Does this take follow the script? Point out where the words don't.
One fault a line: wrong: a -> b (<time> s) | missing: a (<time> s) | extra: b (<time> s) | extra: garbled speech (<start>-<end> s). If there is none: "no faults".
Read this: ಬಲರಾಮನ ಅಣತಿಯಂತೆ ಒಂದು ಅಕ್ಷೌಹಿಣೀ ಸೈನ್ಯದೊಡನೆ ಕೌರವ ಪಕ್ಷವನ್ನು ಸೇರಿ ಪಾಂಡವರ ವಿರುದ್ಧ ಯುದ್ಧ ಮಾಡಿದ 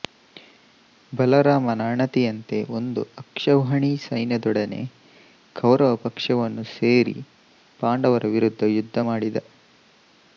no faults